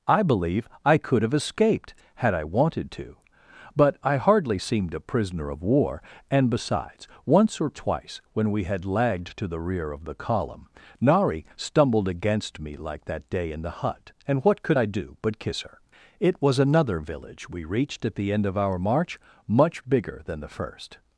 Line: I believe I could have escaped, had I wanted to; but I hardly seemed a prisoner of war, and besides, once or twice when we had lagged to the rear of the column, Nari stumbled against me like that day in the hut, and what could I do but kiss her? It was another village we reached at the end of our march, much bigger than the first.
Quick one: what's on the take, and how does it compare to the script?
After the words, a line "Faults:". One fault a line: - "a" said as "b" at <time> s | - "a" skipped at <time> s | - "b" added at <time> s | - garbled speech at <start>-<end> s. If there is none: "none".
I believe I could have escaped, had I wanted to; but I hardly seemed a prisoner of war, and besides, once or twice when we had lagged to the rear of the column, Nari stumbled against me like that day in the hut, and what could I do but kiss her? It was another village we reached at the end of our march, much bigger than the first.
Faults:
none